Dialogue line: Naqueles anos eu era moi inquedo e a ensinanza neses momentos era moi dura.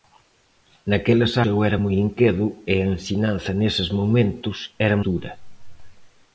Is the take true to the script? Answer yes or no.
no